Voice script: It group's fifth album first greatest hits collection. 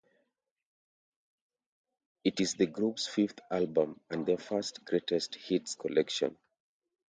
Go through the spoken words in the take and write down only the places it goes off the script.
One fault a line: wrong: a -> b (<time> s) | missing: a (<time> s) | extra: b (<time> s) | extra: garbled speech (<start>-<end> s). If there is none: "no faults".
extra: is the (2.4 s)
extra: and their (4.1 s)